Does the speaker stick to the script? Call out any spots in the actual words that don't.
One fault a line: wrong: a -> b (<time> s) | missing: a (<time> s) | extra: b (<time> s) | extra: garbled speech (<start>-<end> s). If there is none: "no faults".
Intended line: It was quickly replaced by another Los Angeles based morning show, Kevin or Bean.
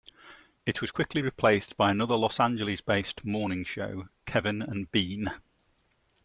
wrong: or -> and (4.6 s)